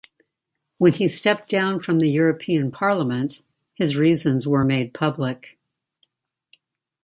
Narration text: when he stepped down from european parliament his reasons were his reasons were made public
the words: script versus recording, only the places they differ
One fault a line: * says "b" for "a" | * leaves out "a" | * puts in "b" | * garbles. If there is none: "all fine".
* puts in "the"
* leaves out "his reasons were"